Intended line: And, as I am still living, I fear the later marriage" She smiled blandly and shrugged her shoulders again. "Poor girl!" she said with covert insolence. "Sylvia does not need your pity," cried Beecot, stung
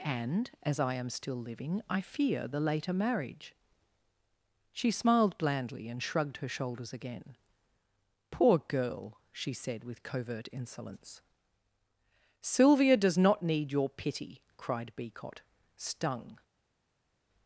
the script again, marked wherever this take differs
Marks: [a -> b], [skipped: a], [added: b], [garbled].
And, as I am still living, I fear the later marriage" She smiled blandly and shrugged her shoulders again. "Poor girl!" she said with covert insolence. "Sylvia does not need your pity," cried Beecot, stung